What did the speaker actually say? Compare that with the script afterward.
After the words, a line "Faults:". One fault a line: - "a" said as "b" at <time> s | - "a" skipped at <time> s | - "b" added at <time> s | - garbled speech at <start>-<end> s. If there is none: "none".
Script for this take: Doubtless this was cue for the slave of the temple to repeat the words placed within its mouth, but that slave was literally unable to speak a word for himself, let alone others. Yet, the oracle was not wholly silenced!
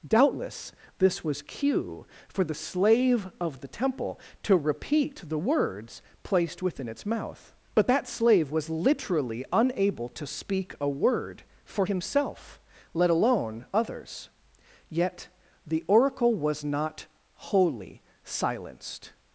Doubtless this was cue for the slave of the temple to repeat the words placed within its mouth, but that slave was literally unable to speak a word for himself, let alone others. Yet, the oracle was not wholly silenced!
Faults:
none